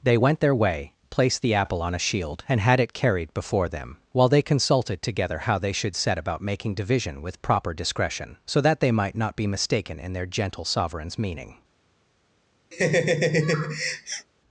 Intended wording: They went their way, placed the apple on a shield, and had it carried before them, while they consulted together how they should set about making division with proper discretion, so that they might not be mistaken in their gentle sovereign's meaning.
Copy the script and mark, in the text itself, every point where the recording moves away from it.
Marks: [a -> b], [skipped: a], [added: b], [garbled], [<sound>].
They went their way, placed the apple on a shield, and had it carried before them, while they consulted together how they should set about making division with proper discretion, so that they might not be mistaken in their gentle sovereign's meaning. [laugh]